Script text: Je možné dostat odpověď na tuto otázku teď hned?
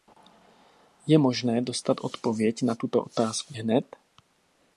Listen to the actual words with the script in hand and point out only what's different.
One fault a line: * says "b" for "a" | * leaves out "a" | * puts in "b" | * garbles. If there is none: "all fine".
* leaves out "teď"